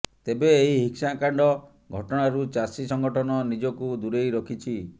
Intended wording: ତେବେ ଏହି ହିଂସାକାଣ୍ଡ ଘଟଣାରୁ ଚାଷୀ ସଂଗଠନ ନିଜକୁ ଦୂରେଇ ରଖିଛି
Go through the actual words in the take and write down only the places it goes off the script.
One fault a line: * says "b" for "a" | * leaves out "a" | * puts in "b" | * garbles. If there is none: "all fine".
all fine